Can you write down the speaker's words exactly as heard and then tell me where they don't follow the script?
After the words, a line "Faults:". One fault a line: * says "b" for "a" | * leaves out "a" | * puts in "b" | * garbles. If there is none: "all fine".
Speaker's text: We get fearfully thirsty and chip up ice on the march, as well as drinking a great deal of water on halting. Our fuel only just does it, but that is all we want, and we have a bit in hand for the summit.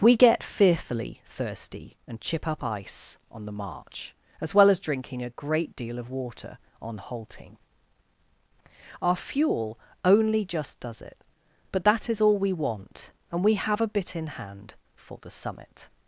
We get fearfully thirsty and chip up ice on the march, as well as drinking a great deal of water on halting. Our fuel only just does it, but that is all we want, and we have a bit in hand for the summit.
Faults:
all fine